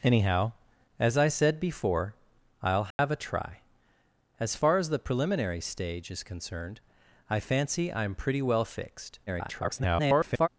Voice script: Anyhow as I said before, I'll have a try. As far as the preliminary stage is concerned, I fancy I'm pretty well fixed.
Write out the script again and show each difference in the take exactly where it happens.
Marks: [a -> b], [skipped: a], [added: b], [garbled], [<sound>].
Anyhow as I said before, I'll have [dropout] a try. As far as the preliminary stage is concerned, I fancy I'm pretty well fixed. [garbled]